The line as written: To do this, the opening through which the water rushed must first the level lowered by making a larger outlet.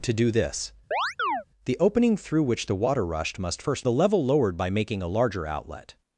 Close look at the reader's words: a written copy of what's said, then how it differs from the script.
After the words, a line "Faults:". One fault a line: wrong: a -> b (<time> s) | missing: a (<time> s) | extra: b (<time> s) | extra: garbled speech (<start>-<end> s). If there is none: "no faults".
To do this, the opening through which the water rushed must first the level lowered by making a larger outlet.
Faults:
no faults